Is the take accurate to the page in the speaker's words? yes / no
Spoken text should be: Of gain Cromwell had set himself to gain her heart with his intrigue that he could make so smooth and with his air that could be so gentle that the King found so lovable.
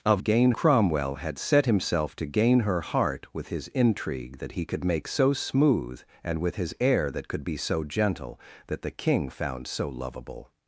yes